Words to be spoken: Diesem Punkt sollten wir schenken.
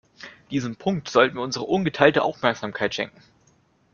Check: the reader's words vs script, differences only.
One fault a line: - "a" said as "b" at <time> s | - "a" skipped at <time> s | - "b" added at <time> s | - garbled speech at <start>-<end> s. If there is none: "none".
- "unsere ungeteilte Aufmerksamkeit" added at 1.4 s